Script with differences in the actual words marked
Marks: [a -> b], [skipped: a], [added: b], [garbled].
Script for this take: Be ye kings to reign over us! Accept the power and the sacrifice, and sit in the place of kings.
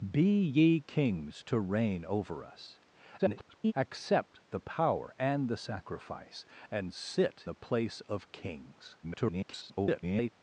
Be ye kings to reign over us! [garbled] Accept the power and the sacrifice, and sit [skipped: in] the place of kings. [garbled]